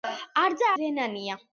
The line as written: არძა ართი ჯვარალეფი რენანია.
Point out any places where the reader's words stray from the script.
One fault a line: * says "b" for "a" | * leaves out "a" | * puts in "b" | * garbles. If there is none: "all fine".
* leaves out "ართი ჯვარალეფი"